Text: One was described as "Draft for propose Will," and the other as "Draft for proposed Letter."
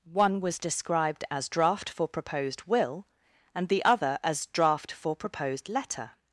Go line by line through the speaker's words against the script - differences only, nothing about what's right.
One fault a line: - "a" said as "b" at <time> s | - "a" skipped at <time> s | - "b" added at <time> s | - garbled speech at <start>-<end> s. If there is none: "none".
- "propose" said as "proposed" at 2.1 s